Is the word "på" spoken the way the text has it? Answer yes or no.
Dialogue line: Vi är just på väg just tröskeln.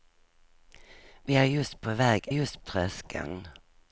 yes